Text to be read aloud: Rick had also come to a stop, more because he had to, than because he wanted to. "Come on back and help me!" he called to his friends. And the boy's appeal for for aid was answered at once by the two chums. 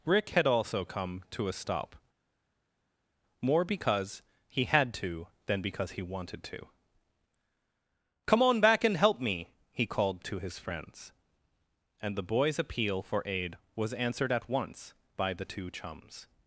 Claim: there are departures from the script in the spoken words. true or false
true